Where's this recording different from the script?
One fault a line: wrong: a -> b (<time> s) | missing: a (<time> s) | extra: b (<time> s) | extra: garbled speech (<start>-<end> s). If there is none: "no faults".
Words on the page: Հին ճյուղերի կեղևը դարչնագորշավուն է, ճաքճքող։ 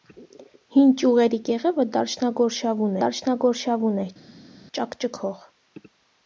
extra: դարչնագորշավուն (3.0 s)